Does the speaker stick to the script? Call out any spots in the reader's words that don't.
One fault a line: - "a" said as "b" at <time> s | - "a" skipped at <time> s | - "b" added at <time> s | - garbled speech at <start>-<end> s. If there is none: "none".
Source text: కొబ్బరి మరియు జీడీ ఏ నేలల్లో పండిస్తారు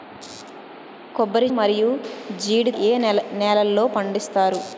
none